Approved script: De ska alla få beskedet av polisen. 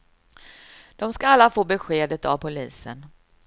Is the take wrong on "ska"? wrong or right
right